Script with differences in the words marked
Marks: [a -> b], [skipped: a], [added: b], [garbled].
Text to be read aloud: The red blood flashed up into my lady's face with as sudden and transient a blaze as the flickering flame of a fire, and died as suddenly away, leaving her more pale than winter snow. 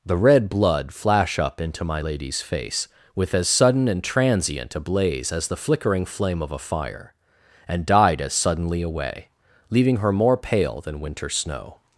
The red blood [flashed -> flash] up into my lady's face with as sudden and transient a blaze as the flickering flame of a fire, and died as suddenly away, leaving her more pale than winter snow.